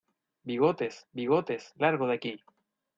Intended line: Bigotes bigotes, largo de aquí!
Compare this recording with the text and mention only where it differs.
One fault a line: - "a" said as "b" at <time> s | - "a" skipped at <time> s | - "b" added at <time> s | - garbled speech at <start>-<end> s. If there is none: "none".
none